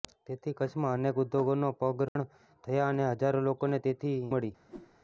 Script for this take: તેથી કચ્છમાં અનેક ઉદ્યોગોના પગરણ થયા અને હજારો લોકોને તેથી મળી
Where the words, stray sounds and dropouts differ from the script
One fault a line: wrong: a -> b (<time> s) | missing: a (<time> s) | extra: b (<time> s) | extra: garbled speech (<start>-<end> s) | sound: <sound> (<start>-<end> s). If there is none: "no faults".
sound: dropout (2.1-2.2 s)
sound: whoosh (4.7-5.0 s)